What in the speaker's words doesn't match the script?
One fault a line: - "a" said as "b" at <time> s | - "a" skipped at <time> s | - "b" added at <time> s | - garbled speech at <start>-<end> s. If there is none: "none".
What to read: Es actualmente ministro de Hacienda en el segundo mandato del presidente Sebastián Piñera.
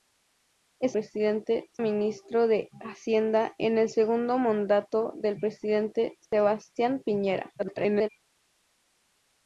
- "actualmente" said as "presidente" at 0.9 s
- garbled speech at 7.6-8.1 s